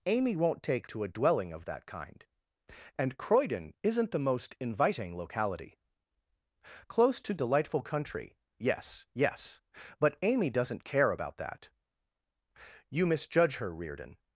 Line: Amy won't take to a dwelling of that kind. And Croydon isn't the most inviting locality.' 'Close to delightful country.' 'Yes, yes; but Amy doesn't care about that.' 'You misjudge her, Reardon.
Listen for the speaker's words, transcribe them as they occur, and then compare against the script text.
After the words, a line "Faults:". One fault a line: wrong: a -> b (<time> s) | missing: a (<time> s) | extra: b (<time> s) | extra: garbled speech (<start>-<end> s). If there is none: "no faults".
Amy won't take to a dwelling of that kind. And Croydon isn't the most inviting locality.' 'Close to delightful country.' 'Yes, yes; but Amy doesn't care about that.' 'You misjudge her, Reardon.
Faults:
no faults